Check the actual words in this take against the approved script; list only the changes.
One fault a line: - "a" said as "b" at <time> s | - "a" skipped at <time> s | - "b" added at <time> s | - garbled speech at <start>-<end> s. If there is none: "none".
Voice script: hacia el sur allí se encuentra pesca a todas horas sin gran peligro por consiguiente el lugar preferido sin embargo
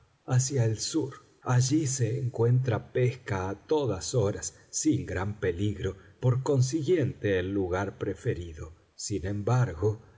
none